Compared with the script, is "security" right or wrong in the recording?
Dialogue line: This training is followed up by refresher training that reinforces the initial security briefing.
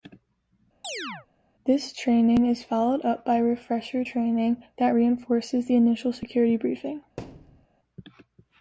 right